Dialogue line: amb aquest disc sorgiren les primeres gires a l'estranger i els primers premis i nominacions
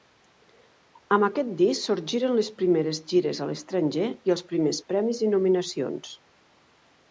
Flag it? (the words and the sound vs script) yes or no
no